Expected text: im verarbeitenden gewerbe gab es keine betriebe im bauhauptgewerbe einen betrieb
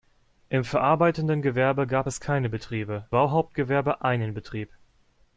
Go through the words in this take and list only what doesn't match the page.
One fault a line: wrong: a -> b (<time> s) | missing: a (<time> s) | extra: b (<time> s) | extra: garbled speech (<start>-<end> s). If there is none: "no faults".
missing: im (3.1 s)